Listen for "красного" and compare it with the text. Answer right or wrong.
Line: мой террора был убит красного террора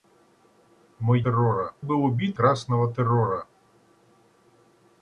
right